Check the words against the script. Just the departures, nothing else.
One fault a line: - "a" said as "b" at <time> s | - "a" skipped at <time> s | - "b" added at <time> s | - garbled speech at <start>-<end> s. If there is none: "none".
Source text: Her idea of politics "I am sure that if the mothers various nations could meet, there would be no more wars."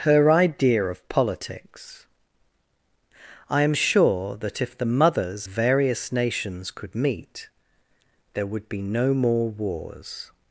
none